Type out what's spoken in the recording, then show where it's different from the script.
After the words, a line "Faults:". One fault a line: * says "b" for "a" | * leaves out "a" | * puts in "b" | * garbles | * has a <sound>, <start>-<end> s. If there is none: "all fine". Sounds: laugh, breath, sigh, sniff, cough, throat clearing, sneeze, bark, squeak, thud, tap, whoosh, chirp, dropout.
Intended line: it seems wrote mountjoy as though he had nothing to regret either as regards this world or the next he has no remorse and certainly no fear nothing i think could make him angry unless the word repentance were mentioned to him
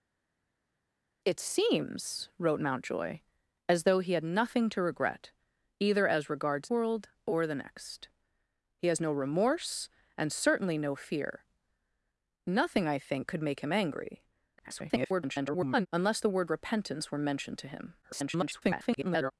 it seems wrote mountjoy as though he had nothing to regret either as regards world or the next he has no remorse and certainly no fear nothing i think could make him angry [garbled] unless the word repentance were mentioned to him [garbled]
Faults:
* leaves out "this"
* garbles
* garbles